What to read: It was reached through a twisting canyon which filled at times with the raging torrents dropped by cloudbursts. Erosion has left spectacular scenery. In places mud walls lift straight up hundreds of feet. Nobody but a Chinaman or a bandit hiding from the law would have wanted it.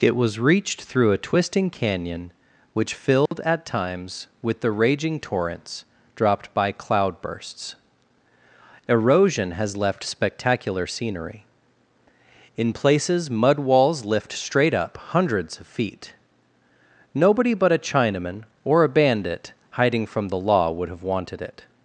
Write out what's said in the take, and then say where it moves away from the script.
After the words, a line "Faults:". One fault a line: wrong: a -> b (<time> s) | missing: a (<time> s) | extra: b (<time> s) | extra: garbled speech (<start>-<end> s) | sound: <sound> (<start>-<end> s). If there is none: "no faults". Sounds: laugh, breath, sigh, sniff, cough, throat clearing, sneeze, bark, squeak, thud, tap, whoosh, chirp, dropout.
It was reached through a twisting canyon which filled at times with the raging torrents dropped by cloudbursts. Erosion has left spectacular scenery. In places mud walls lift straight up hundreds of feet. Nobody but a Chinaman or a bandit hiding from the law would have wanted it.
Faults:
sound: dropout (3.3-3.3 s)